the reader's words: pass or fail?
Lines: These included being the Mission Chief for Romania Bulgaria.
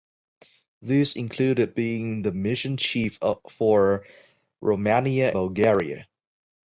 pass